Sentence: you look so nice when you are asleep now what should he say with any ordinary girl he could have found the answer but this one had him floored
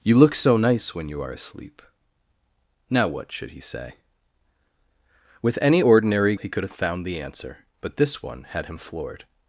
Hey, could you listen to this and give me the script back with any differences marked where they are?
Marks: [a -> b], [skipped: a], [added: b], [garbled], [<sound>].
you look so nice when you are asleep now what should he say with any ordinary [skipped: girl] he could have found the answer but this one had him floored